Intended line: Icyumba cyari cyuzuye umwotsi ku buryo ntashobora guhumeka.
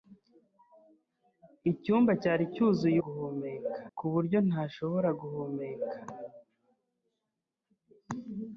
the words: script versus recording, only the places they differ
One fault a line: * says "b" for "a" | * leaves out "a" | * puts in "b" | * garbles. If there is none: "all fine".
* says "guhumeka" for "umwotsi"